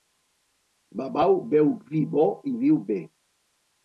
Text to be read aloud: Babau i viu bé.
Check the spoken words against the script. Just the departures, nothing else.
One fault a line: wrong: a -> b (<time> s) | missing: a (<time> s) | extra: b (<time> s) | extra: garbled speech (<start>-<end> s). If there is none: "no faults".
extra: beu vi bo (1.5 s)